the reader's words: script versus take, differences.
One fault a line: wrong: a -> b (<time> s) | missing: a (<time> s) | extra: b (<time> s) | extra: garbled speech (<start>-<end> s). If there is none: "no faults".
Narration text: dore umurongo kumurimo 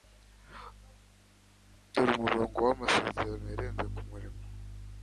extra: wamasezerano yarenze (2.7 s)